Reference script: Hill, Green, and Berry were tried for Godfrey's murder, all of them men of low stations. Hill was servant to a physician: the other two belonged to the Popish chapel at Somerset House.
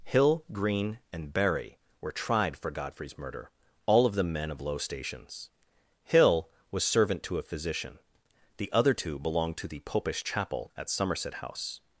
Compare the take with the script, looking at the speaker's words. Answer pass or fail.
pass